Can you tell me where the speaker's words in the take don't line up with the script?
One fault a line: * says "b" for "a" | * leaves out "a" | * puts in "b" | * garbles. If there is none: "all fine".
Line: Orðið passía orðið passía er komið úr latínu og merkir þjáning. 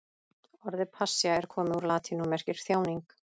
* leaves out "orðið passía"